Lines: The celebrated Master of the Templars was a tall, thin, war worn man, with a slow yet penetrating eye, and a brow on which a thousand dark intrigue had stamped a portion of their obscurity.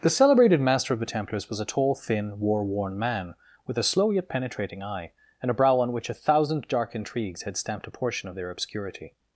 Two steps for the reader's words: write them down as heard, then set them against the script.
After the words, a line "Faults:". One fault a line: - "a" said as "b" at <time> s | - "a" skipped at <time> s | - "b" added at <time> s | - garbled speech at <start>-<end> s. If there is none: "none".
The celebrated Master of the Templars was a tall, thin, war worn man, with a slow yet penetrating eye, and a brow on which a thousand dark intrigues had stamped a portion of their obscurity.
Faults:
- "intrigue" said as "intrigues" at 7.0 s